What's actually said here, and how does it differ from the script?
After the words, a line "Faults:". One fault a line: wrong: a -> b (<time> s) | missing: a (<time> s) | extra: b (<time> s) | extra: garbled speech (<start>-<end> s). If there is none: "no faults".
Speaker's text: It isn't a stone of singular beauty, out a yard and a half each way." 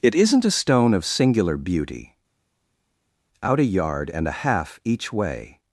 It isn't a stone of singular beauty, out a yard and a half each way."
Faults:
no faults